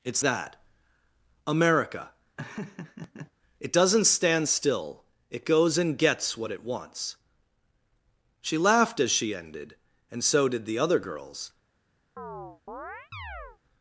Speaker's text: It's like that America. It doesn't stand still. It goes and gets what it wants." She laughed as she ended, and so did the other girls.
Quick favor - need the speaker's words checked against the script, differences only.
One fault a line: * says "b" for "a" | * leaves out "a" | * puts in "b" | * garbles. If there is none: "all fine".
* leaves out "like"